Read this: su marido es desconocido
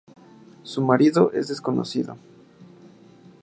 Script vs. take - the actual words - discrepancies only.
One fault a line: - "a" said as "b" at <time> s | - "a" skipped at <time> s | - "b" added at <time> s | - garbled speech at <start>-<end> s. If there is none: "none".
none